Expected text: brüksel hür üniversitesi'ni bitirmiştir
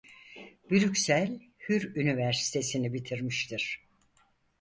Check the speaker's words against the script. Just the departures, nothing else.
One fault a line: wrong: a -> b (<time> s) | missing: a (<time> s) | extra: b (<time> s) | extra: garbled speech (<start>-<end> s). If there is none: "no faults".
no faults